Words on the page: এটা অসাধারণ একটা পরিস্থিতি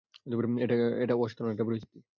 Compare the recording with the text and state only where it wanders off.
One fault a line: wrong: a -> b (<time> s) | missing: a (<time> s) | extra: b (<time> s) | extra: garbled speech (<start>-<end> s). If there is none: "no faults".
no faults